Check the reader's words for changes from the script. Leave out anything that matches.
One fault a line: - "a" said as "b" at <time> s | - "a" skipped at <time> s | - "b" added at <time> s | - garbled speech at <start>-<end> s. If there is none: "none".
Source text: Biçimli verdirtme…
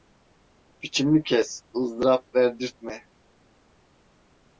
- "kes ızdırap" added at 1.2 s